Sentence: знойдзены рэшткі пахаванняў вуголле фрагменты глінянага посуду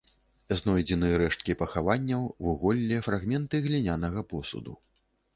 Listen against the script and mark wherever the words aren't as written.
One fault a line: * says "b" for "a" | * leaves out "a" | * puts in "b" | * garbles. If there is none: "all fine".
all fine